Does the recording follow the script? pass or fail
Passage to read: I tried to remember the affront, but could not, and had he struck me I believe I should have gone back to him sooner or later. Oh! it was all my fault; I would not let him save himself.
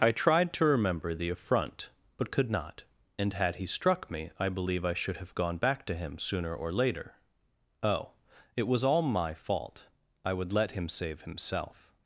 fail